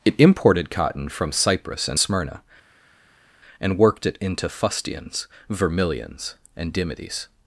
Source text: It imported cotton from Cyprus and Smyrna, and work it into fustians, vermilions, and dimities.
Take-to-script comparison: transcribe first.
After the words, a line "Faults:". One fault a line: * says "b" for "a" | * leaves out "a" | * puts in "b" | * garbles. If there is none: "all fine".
It imported cotton from Cyprus and Smyrna, and worked it into fustians, vermilions, and dimities.
Faults:
* says "worked" for "work"